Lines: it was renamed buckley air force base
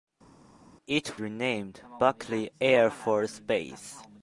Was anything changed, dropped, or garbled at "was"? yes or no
yes